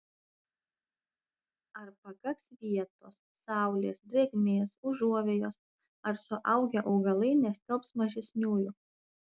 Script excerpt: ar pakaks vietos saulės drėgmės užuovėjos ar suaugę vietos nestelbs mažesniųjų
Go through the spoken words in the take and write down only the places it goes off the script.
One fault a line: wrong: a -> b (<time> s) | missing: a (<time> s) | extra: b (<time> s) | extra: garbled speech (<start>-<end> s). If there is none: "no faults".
wrong: vietos -> augalai (7.0 s)